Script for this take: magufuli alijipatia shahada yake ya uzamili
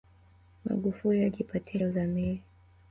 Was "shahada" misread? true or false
true